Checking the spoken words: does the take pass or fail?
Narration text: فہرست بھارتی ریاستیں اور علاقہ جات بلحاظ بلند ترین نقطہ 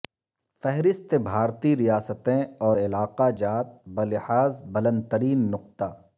pass